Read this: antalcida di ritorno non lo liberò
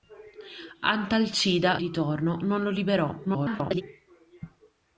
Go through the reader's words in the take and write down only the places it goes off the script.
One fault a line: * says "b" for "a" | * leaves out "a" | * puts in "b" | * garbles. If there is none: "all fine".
* leaves out "di"
* garbles